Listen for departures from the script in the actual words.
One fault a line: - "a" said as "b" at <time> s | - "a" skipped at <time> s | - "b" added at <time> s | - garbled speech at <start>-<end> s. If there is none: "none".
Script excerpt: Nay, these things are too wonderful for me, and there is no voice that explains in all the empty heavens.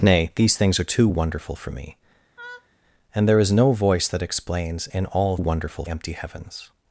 - "the" said as "wonderful" at 5.3 s